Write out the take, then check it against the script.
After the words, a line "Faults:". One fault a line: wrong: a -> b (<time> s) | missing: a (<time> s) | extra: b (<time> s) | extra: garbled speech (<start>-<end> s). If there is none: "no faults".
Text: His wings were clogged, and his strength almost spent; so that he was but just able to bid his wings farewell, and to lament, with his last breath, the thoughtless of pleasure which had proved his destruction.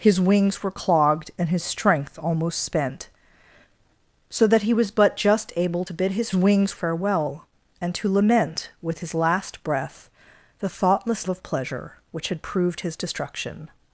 His wings were clogged, and his strength almost spent; so that he was but just able to bid his wings farewell, and to lament, with his last breath, the thoughtless of pleasure which had proved his destruction.
Faults:
no faults